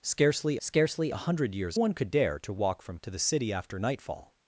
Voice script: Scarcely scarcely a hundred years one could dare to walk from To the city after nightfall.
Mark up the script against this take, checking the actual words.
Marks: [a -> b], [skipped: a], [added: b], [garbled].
Scarcely scarcely a hundred years one could dare to walk from To the city after nightfall.